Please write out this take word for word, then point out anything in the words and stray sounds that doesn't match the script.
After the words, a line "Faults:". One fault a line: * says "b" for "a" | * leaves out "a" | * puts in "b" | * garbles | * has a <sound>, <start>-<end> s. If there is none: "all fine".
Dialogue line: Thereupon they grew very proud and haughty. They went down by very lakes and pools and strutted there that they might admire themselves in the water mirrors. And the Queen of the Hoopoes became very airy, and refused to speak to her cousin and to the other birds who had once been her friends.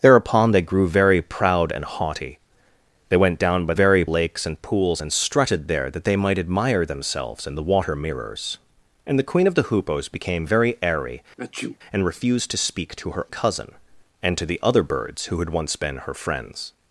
Thereupon they grew very proud and haughty. They went down by very lakes and pools and strutted there that they might admire themselves in the water mirrors. And the Queen of the Hoopoes became very airy, and refused to speak to her cousin and to the other birds who had once been her friends.
Faults:
* has a sneeze, 11.4-11.8 s